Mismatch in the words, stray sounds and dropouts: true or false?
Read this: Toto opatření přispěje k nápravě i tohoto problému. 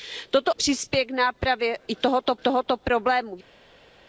true